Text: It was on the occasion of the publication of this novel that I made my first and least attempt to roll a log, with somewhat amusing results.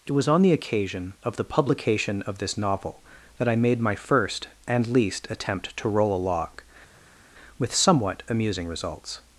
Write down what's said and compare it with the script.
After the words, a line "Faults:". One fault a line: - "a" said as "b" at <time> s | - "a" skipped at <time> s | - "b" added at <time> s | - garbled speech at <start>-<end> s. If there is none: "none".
It was on the occasion of the publication of this novel that I made my first and least attempt to roll a log, with somewhat amusing results.
Faults:
none